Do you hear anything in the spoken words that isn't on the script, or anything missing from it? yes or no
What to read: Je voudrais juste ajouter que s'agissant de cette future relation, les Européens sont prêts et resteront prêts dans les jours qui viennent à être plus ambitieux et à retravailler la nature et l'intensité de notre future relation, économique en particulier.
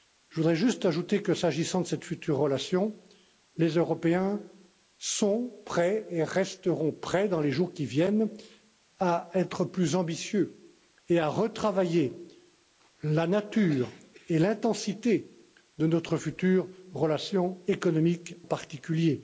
yes